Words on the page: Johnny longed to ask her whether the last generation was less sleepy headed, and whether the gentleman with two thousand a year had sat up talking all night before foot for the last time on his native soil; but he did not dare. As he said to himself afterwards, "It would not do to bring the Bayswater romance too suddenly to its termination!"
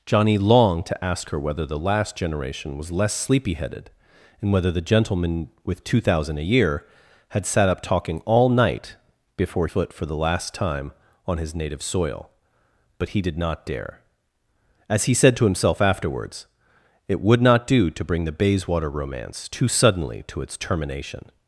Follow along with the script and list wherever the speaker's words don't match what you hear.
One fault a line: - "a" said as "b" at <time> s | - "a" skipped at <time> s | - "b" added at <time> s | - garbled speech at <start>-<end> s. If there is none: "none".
none